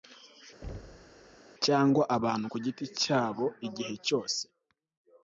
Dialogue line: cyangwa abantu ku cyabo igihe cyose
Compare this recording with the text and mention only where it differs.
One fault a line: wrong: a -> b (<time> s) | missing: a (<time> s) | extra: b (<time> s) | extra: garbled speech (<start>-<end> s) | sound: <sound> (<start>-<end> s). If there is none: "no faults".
sound: thud (0.6-1.4 s)
extra: giti (2.6 s)